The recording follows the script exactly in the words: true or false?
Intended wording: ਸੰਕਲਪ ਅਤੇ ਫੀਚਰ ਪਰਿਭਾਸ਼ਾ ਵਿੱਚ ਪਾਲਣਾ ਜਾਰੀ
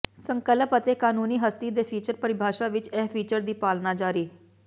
false